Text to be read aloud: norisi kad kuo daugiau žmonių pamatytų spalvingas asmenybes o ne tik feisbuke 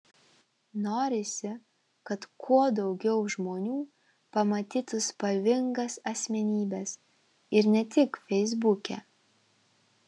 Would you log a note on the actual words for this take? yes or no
yes